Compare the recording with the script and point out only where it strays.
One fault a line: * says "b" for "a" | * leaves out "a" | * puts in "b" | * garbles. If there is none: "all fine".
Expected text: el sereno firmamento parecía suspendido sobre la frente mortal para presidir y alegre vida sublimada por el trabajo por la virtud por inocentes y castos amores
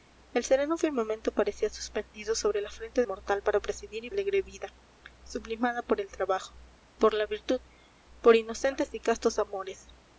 all fine